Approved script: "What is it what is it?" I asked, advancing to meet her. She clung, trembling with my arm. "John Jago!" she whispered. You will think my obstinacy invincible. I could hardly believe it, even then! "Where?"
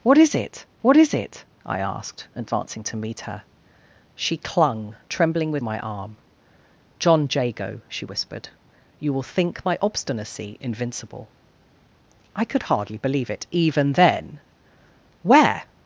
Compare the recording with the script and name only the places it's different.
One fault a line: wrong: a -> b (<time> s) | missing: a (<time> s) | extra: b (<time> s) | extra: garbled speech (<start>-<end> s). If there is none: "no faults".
no faults